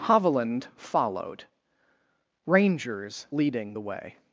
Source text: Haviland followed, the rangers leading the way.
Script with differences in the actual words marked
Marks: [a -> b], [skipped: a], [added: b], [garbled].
Haviland followed, [skipped: the] rangers leading the way.